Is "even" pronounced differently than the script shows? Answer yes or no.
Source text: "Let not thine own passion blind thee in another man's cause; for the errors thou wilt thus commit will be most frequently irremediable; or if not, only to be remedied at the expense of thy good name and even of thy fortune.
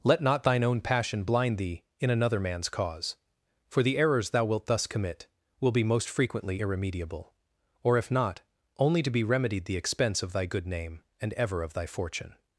yes